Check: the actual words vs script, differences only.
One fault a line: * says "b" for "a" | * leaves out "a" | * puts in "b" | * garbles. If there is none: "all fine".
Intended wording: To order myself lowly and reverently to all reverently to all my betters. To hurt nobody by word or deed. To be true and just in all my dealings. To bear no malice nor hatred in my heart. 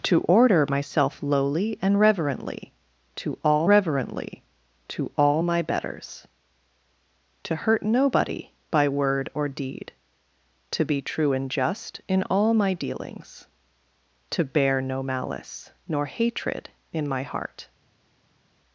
all fine